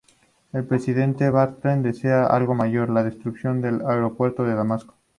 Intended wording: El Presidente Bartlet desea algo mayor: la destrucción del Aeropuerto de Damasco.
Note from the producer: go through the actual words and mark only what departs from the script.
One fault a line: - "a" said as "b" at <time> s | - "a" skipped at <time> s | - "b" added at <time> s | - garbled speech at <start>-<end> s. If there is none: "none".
none